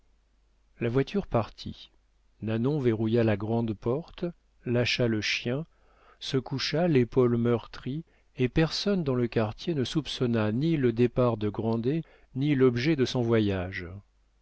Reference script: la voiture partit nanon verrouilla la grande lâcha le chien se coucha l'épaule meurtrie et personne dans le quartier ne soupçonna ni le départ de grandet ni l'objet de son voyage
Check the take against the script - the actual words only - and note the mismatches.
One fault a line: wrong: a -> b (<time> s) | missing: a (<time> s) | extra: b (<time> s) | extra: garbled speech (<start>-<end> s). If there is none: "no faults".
extra: porte (3.8 s)